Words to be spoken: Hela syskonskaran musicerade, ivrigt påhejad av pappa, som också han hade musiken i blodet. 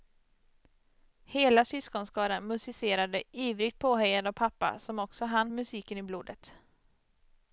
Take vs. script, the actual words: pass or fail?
fail